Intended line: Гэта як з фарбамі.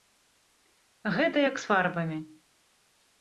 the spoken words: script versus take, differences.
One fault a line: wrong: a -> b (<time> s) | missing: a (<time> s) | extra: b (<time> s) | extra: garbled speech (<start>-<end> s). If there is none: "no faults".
no faults